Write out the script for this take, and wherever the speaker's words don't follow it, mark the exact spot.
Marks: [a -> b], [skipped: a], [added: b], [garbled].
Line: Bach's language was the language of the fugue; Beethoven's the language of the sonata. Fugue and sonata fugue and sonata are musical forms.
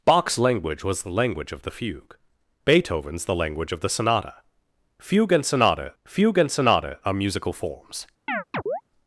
Bach's language was the language of the fugue; Beethoven's the language of the sonata. Fugue and sonata fugue and sonata are musical forms.